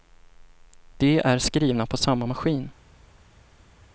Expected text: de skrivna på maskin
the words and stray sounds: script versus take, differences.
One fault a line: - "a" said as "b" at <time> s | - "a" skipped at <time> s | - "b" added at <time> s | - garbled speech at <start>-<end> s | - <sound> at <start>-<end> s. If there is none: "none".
- "är" added at 1.2 s
- "samma" added at 2.0 s